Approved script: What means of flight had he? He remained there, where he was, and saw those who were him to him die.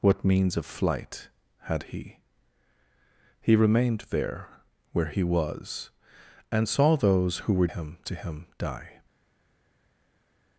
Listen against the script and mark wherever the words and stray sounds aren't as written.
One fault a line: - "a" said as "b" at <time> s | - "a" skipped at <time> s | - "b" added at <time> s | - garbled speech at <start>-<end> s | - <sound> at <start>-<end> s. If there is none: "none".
none